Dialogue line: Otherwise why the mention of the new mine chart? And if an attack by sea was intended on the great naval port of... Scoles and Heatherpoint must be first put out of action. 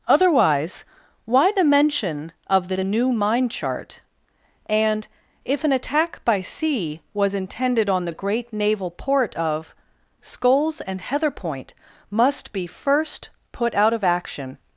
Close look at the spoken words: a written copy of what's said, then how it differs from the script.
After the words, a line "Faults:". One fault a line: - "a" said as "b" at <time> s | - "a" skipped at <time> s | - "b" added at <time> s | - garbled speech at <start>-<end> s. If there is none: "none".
Otherwise why the mention of the the new mine chart? And if an attack by sea was intended on the great naval port of... Scoles and Heatherpoint must be first put out of action.
Faults:
- "the" added at 2.7 s